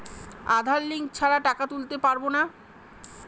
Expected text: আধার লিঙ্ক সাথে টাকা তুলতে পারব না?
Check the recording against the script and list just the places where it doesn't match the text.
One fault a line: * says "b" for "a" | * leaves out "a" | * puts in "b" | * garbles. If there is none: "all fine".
* says "ছাড়া" for "সাথে"